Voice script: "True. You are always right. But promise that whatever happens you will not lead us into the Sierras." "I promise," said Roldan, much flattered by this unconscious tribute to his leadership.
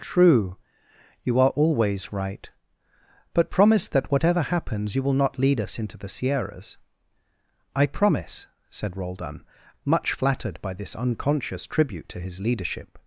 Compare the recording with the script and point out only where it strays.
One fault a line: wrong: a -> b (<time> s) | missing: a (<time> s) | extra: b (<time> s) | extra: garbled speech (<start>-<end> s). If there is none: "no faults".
no faults